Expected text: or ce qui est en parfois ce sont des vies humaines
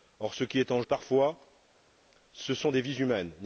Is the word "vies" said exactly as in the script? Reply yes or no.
yes